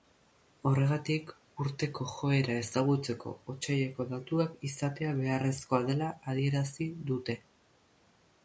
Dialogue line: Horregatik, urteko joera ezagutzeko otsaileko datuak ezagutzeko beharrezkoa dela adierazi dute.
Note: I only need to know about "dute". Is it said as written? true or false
true